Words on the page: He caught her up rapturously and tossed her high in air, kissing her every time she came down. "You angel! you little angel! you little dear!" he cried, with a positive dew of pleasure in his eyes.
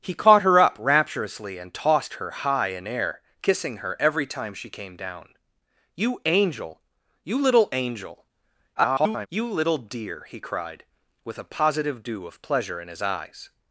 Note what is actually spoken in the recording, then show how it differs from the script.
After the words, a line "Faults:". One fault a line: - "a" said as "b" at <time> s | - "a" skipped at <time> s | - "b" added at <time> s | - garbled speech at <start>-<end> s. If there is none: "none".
He caught her up rapturously and tossed her high in air, kissing her every time she came down. "You angel! you little angel! [garbled] you little dear!" he cried, with a positive dew of pleasure in his eyes.
Faults:
- garbled speech at 8.8-9.3 s